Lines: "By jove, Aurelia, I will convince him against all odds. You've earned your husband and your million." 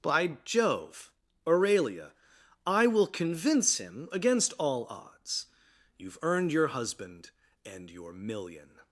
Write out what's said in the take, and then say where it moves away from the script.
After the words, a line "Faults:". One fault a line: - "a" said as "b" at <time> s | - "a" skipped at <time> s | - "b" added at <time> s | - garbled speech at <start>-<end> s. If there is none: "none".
"By jove, Aurelia, I will convince him against all odds. You've earned your husband and your million."
Faults:
none